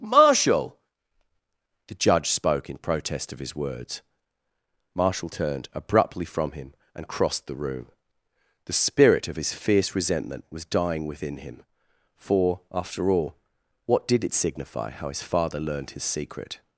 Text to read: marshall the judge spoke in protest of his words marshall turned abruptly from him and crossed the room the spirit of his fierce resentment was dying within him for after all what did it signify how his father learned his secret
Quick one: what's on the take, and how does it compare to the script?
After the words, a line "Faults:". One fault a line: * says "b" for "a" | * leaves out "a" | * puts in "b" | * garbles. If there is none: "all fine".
marshall the judge spoke in protest of his words marshall turned abruptly from him and crossed the room the spirit of his fierce resentment was dying within him for after all what did it signify how his father learned his secret
Faults:
all fine